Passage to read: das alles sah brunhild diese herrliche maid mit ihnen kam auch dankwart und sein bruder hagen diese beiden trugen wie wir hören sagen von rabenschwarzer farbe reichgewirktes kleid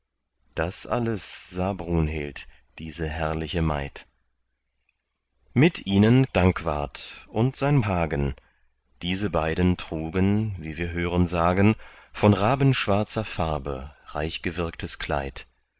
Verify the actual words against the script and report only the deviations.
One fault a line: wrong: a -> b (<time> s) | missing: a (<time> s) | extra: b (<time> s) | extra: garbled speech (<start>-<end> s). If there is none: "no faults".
missing: kam auch (6.3 s)
missing: bruder (7.8 s)